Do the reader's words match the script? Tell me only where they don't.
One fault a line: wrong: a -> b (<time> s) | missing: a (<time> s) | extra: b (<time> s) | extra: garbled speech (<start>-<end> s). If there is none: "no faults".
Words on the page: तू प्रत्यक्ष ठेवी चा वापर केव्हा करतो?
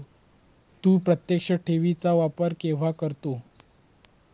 no faults